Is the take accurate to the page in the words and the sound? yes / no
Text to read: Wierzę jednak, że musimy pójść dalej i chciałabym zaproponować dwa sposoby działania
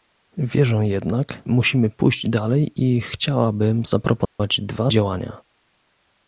no